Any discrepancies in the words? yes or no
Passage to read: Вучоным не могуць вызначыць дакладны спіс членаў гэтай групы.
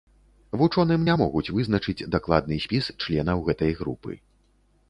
no